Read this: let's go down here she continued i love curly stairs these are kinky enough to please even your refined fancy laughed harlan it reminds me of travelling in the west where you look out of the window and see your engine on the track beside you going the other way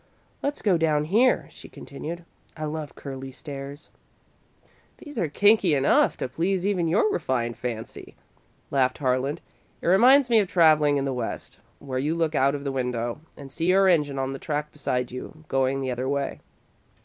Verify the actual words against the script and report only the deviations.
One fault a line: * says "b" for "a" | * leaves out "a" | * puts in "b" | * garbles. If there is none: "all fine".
all fine